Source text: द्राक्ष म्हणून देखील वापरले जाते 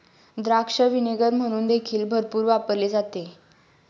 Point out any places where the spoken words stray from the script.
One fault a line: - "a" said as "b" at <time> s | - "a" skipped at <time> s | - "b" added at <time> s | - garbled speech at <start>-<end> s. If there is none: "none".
- "व्हिनेगर" added at 0.8 s
- "भरपूर" added at 2.1 s